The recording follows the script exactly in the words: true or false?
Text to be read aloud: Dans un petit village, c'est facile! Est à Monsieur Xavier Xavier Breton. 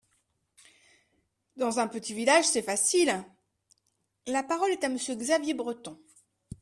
false